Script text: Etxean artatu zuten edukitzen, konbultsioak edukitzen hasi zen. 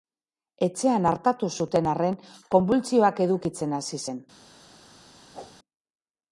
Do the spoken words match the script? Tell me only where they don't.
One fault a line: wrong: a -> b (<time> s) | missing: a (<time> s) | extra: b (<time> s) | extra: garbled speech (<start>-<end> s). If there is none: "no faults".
wrong: edukitzen -> arren (1.9 s)